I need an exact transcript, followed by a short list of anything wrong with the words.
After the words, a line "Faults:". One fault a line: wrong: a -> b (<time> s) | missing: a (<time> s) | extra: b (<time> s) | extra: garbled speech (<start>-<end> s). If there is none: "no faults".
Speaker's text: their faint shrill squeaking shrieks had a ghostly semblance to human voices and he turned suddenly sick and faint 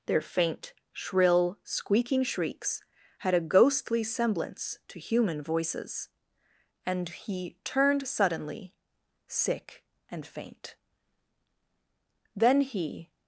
their faint shrill squeaking shrieks had a ghostly semblance to human voices and he turned suddenly sick and faint then he
Faults:
extra: then he (12.3 s)